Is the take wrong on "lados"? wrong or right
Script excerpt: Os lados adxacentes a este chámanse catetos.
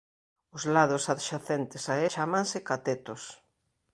right